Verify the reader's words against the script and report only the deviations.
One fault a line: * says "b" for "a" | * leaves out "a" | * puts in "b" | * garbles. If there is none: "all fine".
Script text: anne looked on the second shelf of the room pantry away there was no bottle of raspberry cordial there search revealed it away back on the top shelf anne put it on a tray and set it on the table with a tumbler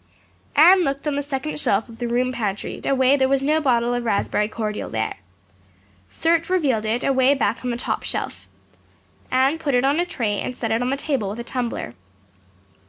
all fine